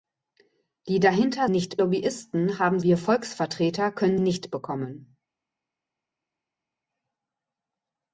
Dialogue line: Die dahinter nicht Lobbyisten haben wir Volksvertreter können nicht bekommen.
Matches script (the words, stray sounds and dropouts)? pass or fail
pass